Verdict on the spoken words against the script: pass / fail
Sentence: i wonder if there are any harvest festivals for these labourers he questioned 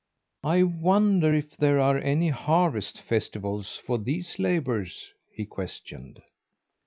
pass